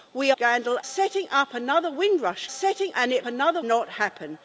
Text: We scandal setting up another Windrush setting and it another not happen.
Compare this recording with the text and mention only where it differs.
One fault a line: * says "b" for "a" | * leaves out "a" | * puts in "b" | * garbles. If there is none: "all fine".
all fine